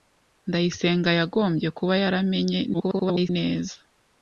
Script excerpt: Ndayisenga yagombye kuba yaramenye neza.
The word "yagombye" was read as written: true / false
true